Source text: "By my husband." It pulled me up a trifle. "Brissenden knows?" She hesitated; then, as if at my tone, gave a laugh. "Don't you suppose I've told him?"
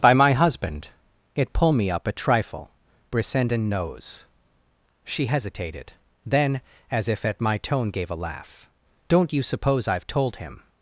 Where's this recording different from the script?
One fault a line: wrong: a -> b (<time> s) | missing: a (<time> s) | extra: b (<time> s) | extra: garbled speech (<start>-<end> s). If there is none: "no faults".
wrong: pulled -> pull (1.5 s)